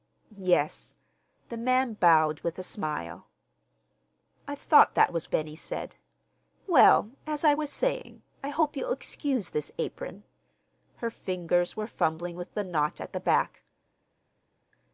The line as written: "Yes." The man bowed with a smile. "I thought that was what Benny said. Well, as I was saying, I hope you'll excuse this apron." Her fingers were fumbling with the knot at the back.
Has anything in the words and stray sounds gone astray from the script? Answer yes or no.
yes